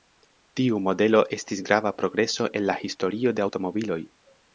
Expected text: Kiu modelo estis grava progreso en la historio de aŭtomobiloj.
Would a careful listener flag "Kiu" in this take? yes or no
yes